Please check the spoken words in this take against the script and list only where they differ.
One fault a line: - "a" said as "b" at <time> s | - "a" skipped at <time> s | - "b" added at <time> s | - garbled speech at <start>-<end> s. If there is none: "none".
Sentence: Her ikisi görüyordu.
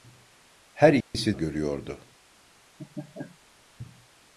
none